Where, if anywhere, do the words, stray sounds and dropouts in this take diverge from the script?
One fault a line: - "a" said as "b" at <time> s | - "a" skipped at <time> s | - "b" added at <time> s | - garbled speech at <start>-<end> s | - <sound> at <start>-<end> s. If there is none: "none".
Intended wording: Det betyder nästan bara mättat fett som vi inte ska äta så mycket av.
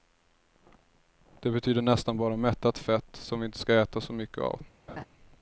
- laugh at 4.9-5.1 s